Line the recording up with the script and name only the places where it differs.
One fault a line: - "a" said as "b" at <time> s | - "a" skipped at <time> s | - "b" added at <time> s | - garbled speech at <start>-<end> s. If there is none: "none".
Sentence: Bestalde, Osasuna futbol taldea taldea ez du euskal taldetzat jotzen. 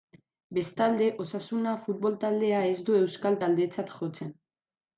- "taldea" skipped at 2.6 s